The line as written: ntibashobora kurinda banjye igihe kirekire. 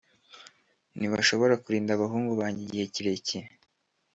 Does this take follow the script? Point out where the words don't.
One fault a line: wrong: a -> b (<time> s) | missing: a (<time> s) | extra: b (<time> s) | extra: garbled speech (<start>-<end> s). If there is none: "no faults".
extra: abahungu (1.9 s)